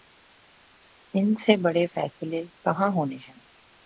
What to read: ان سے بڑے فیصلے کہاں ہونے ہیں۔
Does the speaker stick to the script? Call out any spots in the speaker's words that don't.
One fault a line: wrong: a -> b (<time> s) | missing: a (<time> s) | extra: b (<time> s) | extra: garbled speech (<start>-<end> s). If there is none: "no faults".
no faults